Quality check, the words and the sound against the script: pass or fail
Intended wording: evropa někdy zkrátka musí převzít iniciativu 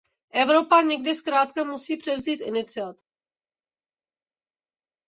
pass